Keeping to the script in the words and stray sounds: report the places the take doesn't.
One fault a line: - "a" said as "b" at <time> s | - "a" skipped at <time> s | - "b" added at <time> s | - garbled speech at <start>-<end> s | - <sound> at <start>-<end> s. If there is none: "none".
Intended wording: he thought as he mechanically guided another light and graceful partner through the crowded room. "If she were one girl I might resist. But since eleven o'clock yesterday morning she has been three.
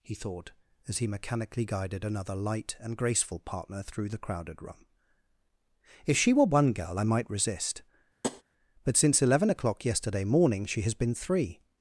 - tap at 8.2-8.4 s